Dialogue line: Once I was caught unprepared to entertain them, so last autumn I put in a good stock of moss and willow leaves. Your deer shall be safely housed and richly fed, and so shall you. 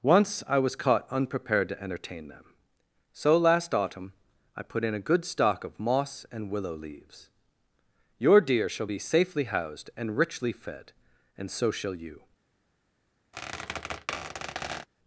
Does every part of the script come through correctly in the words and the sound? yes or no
no